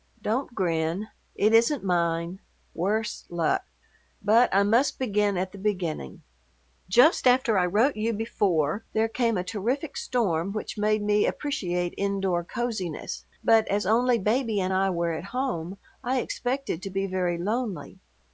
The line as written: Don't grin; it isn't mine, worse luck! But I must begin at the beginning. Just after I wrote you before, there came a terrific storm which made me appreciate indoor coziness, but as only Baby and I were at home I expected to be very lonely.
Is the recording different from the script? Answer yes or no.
no